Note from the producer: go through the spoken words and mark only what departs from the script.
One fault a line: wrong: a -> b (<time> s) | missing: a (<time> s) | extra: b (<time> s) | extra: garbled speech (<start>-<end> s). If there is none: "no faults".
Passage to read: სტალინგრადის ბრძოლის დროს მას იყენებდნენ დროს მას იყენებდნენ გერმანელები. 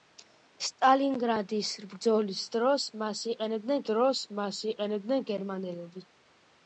no faults